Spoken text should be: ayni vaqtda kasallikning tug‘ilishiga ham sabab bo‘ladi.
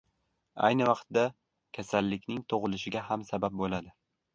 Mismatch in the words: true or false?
false